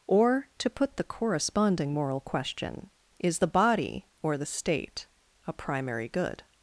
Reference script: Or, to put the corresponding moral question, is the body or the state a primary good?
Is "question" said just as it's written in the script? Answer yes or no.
yes